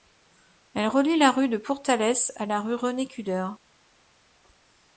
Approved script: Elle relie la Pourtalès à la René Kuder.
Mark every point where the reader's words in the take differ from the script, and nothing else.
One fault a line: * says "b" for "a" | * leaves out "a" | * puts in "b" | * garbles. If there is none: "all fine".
* puts in "rue de"
* puts in "rue"